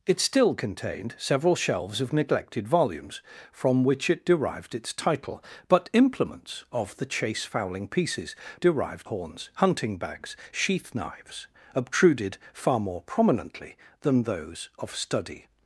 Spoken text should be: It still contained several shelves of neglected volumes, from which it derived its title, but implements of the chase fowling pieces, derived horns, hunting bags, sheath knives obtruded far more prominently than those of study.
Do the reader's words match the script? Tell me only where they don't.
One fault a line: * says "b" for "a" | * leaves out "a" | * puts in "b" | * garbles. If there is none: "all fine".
all fine